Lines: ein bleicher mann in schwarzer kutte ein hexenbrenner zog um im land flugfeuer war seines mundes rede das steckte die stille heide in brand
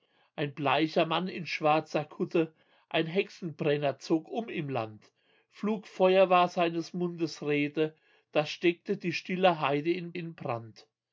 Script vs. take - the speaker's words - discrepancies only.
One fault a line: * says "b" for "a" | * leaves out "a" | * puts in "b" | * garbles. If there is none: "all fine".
* puts in "in"